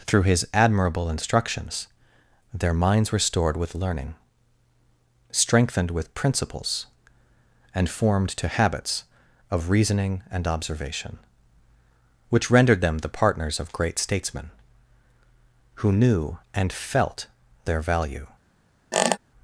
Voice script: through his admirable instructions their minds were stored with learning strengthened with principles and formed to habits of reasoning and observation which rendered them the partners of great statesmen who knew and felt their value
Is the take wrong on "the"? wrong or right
right